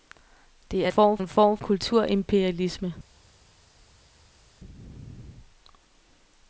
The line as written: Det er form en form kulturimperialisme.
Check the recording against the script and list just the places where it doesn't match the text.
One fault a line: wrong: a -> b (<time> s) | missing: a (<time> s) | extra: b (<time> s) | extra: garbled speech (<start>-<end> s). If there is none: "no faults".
no faults